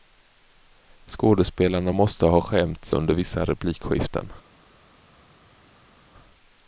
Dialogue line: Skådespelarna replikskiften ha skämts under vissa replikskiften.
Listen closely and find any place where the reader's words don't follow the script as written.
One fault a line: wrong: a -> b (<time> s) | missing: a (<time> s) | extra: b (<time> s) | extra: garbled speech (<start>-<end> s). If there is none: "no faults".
wrong: replikskiften -> måste (1.9 s)